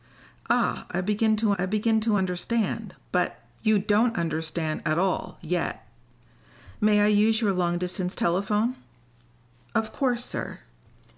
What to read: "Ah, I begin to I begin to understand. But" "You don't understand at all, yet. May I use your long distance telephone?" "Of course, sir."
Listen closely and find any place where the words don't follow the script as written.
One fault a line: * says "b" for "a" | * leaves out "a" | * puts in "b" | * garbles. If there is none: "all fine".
all fine